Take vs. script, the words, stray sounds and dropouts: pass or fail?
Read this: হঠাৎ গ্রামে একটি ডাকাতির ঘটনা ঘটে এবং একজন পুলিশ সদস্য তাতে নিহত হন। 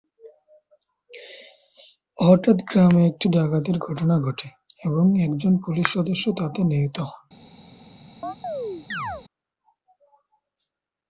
fail